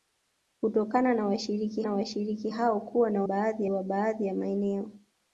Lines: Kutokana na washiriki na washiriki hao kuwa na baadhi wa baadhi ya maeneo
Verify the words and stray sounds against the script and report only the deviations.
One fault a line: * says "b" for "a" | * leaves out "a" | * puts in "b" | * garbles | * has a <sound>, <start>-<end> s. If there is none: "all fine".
all fine